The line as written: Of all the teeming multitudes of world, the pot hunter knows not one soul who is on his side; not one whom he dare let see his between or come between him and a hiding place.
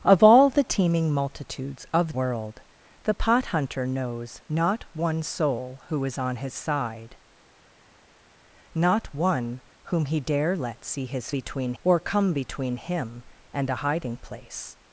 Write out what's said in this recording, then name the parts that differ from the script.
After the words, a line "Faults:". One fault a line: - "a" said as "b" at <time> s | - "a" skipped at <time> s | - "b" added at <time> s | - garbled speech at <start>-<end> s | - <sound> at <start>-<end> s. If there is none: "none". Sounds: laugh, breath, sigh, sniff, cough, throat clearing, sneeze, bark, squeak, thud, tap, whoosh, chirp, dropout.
Of all the teeming multitudes of world, the pot hunter knows not one soul who is on his side; not one whom he dare let see his between or come between him and a hiding place.
Faults:
none